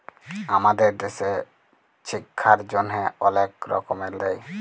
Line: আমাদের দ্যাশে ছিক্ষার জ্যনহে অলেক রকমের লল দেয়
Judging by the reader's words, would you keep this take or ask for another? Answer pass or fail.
fail